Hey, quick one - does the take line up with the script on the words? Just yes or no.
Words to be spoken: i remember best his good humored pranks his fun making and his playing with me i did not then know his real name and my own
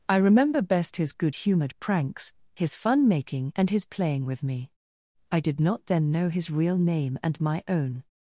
yes